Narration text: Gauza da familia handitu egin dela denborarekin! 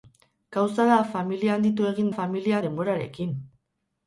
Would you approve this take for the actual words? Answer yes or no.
no